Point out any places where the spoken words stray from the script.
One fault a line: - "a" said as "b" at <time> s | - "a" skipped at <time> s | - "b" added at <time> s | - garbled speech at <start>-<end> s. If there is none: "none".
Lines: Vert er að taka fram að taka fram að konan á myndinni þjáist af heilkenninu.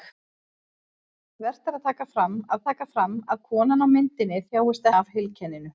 none